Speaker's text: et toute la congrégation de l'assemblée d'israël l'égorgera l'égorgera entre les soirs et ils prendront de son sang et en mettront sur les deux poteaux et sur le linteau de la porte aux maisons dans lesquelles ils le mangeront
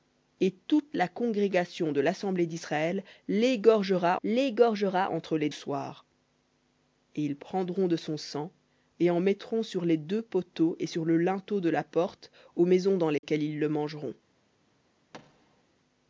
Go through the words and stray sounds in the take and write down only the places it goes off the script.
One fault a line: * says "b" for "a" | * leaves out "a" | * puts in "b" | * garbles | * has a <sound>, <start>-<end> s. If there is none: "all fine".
* has a dropout, 13.2-13.2 s
* has a thud, 15.1-15.6 s